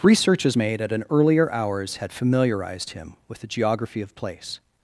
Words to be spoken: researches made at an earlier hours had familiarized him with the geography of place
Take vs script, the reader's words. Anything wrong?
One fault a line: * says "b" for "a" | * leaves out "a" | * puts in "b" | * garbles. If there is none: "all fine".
all fine